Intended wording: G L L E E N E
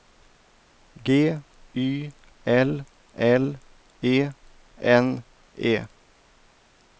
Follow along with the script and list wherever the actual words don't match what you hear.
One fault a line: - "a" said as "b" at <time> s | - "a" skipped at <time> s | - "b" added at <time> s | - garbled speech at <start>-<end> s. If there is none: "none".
- "Y" added at 1.8 s
- "E" skipped at 4.3 s